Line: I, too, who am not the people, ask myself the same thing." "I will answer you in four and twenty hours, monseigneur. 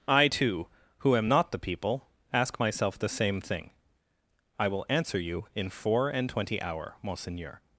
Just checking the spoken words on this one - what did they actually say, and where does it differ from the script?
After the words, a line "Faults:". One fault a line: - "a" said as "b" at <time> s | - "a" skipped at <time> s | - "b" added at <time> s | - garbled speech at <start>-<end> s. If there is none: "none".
I, too, who am not the people, ask myself the same thing." "I will answer you in four and twenty hour, monseigneur.
Faults:
- "hours" said as "hour" at 6.6 s